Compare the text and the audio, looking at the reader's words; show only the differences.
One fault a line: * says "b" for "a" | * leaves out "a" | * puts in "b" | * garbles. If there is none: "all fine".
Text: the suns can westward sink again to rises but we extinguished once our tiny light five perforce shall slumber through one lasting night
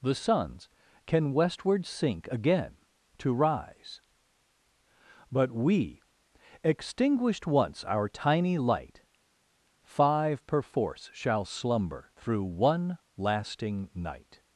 * says "rise" for "rises"